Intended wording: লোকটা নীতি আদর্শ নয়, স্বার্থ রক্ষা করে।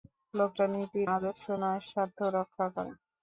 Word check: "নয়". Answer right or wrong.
right